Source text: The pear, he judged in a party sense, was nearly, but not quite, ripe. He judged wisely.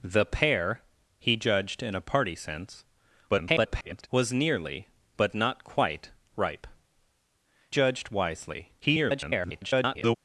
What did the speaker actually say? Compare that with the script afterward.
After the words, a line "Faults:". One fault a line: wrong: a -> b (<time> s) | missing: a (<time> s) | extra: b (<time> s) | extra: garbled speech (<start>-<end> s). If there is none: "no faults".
The pear, he judged in a party sense, [garbled] was nearly, but not quite, ripe. Judged wisely. [garbled]
Faults:
extra: garbled speech (3.3-4.1 s)
missing: He (6.7 s)
extra: garbled speech (8.8-10.2 s)